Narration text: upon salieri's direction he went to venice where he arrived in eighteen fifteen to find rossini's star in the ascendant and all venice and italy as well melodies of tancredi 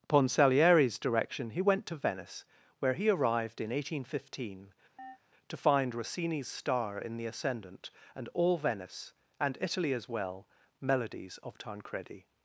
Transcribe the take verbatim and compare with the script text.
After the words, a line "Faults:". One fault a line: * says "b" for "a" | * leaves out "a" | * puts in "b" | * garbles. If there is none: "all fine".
upon salieri's direction he went to venice where he arrived in eighteen fifteen to find rossini's star in the ascendant and all venice and italy as well melodies of tancredi
Faults:
all fine